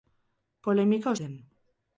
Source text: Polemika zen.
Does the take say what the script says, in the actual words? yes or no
yes